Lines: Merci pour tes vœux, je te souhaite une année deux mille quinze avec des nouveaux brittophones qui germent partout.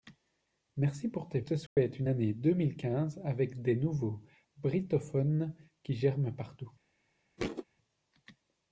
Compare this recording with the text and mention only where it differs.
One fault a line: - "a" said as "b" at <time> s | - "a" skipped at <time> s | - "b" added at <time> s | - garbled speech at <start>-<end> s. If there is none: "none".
- "vœux je" skipped at 1.4 s